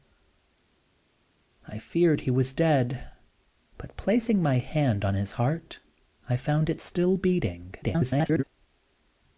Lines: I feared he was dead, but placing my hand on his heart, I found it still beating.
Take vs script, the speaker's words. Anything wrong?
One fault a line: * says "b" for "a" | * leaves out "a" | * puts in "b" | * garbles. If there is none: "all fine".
* garbles